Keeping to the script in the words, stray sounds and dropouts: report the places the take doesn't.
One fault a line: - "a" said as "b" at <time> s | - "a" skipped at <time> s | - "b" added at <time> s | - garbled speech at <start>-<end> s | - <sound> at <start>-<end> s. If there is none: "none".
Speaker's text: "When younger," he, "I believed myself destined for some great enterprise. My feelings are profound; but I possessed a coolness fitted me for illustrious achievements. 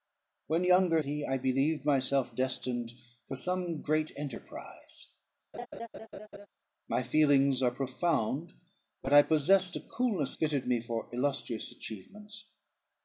- laugh at 5.5-6.5 s